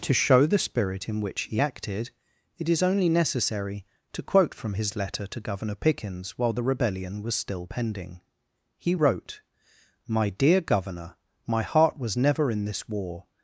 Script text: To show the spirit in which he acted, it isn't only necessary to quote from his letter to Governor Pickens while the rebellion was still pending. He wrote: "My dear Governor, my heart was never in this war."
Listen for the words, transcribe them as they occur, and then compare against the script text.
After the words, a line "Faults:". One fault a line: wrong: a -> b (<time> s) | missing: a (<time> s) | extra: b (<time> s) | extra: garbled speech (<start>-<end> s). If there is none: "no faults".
To show the spirit in which he acted, it is only necessary to quote from his letter to Governor Pickens while the rebellion was still pending. He wrote: "My dear Governor, my heart was never in this war."
Faults:
wrong: isn't -> is (2.7 s)